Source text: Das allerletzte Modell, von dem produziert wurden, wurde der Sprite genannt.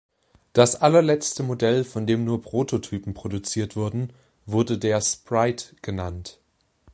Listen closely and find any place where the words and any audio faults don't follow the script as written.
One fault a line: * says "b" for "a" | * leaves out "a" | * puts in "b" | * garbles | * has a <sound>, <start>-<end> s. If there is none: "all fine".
* puts in "nur Prototypen"